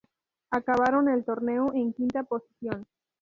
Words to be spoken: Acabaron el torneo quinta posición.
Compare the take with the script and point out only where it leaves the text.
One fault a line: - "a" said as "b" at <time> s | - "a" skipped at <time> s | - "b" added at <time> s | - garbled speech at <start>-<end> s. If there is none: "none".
- "en" added at 1.7 s